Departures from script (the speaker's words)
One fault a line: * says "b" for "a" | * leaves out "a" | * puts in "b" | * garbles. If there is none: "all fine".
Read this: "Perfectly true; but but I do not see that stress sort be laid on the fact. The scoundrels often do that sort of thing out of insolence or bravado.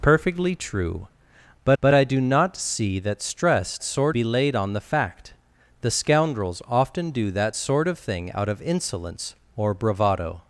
all fine